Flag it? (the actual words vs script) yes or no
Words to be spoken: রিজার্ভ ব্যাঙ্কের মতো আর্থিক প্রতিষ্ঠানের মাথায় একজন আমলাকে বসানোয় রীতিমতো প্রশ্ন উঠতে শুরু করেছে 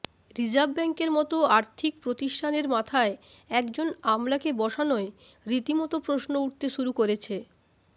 no